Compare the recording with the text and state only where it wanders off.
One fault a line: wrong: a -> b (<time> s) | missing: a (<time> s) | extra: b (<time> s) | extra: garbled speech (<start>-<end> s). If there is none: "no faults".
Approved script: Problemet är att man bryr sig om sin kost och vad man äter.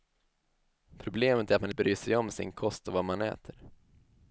no faults